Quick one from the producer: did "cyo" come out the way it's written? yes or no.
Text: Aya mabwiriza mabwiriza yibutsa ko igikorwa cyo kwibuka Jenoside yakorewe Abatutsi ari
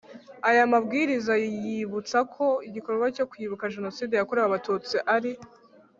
yes